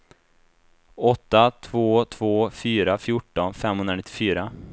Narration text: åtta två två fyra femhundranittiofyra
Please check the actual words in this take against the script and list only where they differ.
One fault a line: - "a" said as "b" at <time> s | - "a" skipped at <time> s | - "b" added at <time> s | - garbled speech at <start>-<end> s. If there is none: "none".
- "fjorton" added at 3.0 s